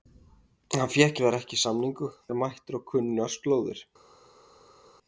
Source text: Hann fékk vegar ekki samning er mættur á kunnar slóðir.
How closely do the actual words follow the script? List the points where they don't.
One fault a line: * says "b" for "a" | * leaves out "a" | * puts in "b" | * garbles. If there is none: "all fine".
all fine